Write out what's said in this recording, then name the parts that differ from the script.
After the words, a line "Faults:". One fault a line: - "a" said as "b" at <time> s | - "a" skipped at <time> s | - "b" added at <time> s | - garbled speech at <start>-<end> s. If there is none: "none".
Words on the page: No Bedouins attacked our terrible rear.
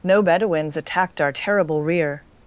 No Bedouins attacked our terrible rear.
Faults:
none